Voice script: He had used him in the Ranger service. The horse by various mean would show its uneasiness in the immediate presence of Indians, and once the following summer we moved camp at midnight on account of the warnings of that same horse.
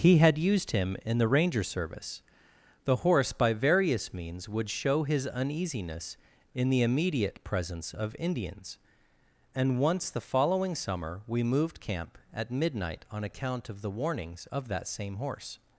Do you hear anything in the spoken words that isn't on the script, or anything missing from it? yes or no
yes